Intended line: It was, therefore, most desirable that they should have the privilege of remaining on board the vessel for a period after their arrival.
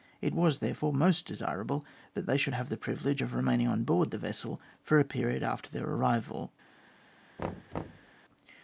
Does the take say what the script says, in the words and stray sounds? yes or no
no